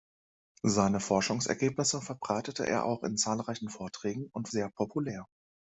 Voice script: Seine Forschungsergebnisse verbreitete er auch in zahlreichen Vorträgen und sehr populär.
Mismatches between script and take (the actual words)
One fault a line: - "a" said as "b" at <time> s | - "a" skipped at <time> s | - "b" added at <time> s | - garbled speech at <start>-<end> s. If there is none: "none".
none